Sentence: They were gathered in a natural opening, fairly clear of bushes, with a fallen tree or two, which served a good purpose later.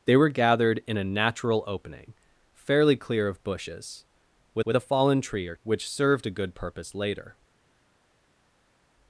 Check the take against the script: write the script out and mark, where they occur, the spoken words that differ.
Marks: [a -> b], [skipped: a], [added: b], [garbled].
They were gathered in a natural opening, fairly clear of bushes, with [added: with] a fallen tree or [skipped: two,] which served a good purpose later.